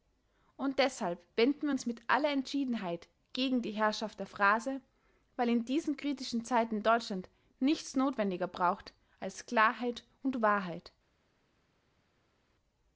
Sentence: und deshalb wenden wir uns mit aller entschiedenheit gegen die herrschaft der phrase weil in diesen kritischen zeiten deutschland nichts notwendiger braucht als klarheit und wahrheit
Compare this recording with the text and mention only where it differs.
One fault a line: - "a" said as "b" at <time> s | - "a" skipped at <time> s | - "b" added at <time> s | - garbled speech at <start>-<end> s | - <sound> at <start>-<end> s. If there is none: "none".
none